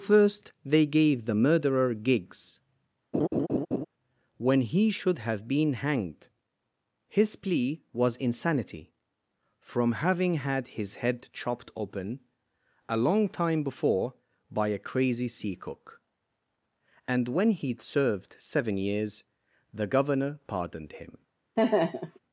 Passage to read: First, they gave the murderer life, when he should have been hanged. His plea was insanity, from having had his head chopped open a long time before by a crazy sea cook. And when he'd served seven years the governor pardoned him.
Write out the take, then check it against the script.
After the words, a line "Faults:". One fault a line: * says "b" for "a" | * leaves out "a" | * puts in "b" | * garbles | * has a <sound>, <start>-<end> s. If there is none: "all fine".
First, they gave the murderer gigs, when he should have been hanged. His plea was insanity, from having had his head chopped open a long time before by a crazy sea cook. And when he'd served seven years the governor pardoned him.
Faults:
* says "gigs" for "life"
* has a laugh, 3.1-3.8 s
* has a laugh, 21.6-22.2 s